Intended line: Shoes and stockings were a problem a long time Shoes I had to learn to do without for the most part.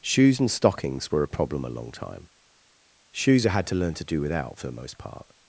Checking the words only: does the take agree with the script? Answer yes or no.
yes